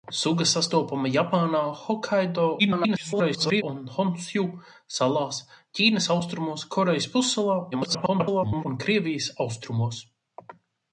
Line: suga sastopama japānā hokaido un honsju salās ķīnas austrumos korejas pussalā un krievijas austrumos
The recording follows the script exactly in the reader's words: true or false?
false